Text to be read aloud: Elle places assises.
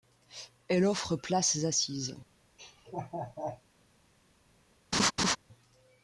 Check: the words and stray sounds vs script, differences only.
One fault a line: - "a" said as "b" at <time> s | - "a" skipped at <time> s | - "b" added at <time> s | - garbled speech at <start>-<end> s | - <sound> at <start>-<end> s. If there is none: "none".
- "offre" added at 0.8 s
- laugh at 2.6-3.6 s
- laugh at 4.9-5.4 s